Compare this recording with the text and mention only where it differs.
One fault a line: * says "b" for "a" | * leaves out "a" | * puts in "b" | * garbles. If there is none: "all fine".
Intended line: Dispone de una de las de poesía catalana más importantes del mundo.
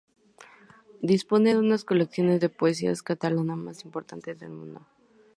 * puts in "colecciones"